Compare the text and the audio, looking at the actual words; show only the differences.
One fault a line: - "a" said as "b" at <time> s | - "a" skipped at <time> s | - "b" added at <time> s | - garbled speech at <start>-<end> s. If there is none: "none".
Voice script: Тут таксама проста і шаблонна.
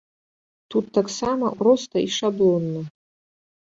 none